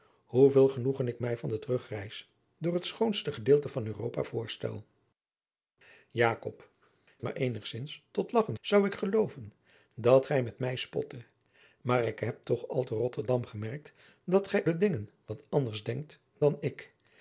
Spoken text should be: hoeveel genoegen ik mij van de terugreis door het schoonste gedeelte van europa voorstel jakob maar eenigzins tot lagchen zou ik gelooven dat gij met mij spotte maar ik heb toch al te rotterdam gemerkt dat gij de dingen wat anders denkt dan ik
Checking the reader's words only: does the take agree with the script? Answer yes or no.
yes